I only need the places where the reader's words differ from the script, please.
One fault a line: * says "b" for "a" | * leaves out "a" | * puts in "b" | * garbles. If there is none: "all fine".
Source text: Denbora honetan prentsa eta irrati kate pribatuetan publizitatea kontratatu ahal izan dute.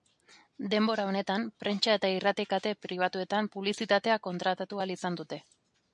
all fine